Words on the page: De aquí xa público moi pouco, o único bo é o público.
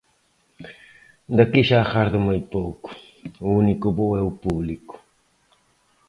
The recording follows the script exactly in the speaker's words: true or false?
false